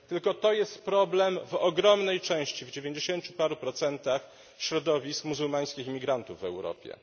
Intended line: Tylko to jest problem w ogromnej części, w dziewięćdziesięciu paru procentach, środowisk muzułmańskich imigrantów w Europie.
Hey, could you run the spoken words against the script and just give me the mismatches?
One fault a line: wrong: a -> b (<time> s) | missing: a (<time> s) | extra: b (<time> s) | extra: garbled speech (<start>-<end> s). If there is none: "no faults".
no faults